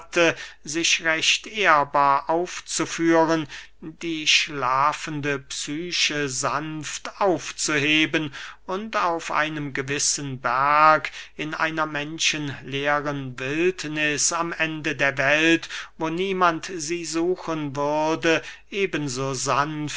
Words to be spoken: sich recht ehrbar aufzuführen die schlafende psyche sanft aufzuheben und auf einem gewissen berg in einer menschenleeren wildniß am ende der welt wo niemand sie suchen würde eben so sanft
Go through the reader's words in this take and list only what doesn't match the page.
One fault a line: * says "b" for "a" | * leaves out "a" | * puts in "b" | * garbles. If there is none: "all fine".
all fine